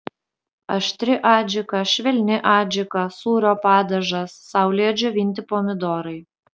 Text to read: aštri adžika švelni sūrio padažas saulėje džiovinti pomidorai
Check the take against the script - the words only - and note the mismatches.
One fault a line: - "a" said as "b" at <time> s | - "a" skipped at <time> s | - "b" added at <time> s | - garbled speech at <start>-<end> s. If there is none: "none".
- "adžika" added at 2.5 s